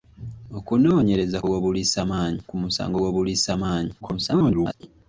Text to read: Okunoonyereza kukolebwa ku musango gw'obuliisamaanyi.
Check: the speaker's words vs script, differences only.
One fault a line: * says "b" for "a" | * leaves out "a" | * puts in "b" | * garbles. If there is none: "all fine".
* says "gw'obuliisamaanyi" for "kukolebwa"
* garbles